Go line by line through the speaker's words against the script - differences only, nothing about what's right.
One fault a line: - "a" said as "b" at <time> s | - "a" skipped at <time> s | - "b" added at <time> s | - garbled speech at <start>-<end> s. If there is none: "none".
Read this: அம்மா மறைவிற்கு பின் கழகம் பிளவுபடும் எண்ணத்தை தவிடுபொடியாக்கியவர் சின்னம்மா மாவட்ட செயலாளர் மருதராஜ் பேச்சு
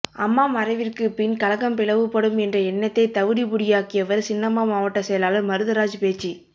- "என்ற" added at 2.5 s